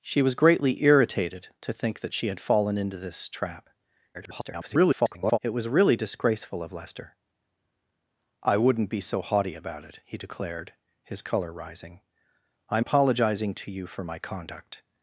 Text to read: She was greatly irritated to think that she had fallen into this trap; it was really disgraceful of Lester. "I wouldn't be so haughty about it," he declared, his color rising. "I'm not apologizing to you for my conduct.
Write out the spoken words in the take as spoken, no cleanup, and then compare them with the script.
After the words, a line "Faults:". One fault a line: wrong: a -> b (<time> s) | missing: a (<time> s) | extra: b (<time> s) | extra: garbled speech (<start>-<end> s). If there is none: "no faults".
She was greatly irritated to think that she had fallen into this trap; [garbled] it was really disgraceful of Lester. "I wouldn't be so haughty about it," he declared, his color rising. "I'm apologizing to you for my conduct.
Faults:
extra: garbled speech (4.1-5.4 s)
missing: not (12.9 s)